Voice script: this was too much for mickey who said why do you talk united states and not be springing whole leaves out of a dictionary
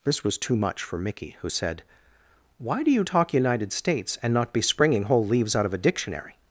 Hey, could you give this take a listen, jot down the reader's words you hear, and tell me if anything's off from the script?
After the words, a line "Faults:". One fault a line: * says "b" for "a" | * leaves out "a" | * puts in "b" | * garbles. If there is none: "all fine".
this was too much for mickey who said why do you talk united states and not be springing whole leaves out of a dictionary
Faults:
all fine